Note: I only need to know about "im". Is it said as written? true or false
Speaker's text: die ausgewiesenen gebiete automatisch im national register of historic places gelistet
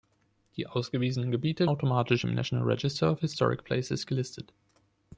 true